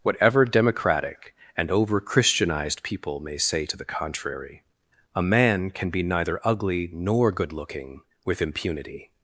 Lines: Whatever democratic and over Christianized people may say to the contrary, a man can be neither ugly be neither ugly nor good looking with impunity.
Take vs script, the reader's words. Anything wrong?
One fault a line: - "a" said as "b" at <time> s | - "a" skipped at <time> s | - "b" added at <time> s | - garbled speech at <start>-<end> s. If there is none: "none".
- "be neither ugly" skipped at 6.9 s